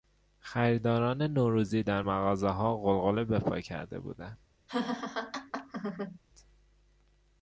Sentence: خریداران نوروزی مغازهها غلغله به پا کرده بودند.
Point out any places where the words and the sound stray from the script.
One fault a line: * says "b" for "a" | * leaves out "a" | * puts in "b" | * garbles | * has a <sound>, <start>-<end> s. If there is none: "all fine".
* puts in "در"
* has a laugh, 4.7-6.2 s